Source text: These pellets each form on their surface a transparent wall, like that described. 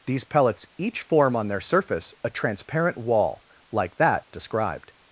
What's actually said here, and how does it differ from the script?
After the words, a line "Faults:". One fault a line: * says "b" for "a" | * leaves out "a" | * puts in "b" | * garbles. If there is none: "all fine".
These pellets each form on their surface a transparent wall, like that described.
Faults:
all fine